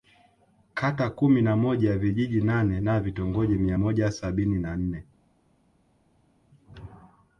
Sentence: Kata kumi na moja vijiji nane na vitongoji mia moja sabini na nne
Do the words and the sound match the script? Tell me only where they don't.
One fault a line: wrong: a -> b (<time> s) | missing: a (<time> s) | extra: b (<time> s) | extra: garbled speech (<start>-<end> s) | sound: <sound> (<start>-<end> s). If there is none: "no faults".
no faults